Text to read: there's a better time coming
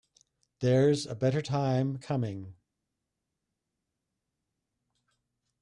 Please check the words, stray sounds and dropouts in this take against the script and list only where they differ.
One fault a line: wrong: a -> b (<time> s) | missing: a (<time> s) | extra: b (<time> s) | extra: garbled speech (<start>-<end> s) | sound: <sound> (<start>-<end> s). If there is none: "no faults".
no faults